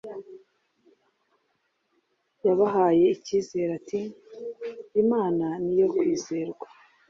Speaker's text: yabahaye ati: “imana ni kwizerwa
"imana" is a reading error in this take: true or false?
false